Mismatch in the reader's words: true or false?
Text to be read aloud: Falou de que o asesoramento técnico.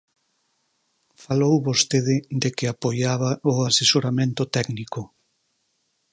true